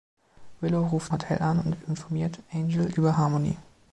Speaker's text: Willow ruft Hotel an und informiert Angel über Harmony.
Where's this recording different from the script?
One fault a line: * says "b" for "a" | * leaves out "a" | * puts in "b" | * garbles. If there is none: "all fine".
all fine